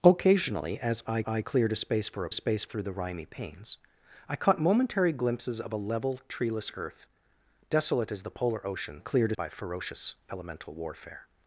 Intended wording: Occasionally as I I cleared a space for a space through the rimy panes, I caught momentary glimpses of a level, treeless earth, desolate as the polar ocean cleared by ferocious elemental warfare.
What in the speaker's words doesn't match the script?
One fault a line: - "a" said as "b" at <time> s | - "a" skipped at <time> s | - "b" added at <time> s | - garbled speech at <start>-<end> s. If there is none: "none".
none